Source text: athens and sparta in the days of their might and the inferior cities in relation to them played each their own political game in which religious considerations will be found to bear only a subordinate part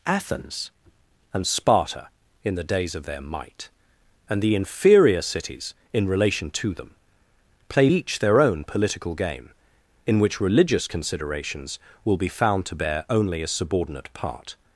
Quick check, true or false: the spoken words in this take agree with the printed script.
true